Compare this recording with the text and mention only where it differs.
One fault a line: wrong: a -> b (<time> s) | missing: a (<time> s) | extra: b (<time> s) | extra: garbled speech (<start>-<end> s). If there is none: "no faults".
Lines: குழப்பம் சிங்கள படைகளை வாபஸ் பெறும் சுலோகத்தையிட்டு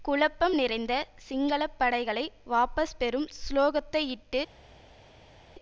extra: நிறைந்த (0.5 s)